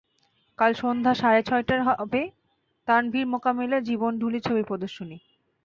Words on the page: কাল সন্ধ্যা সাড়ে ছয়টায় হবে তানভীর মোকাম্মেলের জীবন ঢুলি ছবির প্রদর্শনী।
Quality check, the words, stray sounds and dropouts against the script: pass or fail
pass